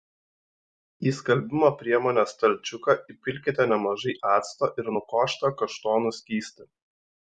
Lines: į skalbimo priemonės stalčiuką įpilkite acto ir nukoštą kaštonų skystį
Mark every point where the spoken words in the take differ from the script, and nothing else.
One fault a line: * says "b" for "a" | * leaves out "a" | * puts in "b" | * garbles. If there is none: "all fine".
* puts in "nemažai"